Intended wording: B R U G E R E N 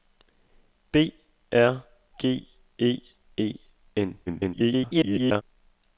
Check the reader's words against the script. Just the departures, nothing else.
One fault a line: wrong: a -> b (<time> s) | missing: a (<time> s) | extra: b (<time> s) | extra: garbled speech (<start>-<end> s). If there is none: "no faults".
missing: U (1.8 s)
missing: R (3.0 s)
extra: garbled speech (4.3-5.4 s)